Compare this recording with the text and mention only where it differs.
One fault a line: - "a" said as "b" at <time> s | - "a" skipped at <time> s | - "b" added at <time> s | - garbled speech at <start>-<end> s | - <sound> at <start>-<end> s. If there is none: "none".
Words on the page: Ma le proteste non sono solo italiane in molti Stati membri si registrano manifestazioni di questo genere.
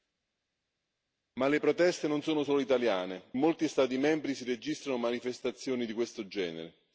- "in" skipped at 3.3 s